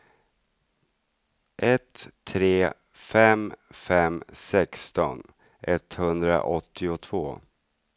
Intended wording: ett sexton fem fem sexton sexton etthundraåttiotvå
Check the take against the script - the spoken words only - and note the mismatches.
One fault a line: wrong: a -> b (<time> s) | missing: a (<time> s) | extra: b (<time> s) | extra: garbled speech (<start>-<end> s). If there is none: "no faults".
wrong: sexton -> tre (2.2 s)
missing: sexton (5.3 s)